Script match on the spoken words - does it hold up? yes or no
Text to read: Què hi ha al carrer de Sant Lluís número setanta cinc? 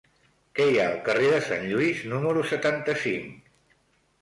yes